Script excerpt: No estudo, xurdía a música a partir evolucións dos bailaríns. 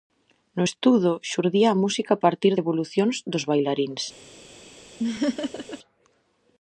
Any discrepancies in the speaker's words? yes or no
no